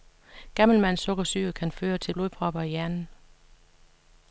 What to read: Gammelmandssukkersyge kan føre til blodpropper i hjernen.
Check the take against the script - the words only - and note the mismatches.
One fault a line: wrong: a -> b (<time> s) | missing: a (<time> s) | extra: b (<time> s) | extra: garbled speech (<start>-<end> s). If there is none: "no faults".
no faults